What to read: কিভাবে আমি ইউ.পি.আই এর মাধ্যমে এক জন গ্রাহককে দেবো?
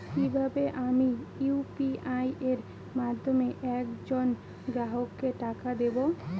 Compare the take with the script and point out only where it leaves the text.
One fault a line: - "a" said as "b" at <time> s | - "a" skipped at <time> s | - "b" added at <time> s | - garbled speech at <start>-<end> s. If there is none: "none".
- "টাকা" added at 5.4 s